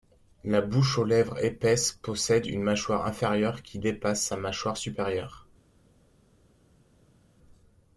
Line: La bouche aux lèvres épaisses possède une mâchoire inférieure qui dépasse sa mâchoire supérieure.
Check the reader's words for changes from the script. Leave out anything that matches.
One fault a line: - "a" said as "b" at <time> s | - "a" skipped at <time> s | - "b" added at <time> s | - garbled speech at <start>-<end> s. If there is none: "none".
none